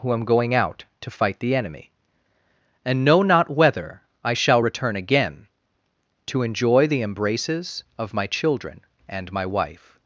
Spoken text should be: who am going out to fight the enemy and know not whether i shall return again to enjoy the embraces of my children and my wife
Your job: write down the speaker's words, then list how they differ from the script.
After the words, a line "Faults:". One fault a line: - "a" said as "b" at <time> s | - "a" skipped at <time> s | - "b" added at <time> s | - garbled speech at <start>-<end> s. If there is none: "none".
who am going out to fight the enemy and know not whether i shall return again to enjoy the embraces of my children and my wife
Faults:
none